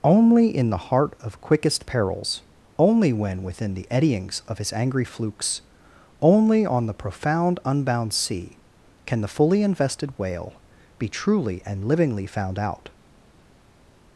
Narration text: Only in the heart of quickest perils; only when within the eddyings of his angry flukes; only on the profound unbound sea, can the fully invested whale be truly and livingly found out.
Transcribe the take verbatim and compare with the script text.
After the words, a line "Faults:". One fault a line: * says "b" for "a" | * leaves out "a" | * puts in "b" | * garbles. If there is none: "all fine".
Only in the heart of quickest perils; only when within the eddyings of his angry flukes; only on the profound unbound sea, can the fully invested whale be truly and livingly found out.
Faults:
all fine